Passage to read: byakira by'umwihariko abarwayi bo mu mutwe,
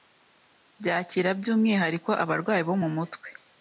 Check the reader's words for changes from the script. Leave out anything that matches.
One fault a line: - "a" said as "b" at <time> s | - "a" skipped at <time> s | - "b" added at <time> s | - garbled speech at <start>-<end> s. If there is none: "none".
none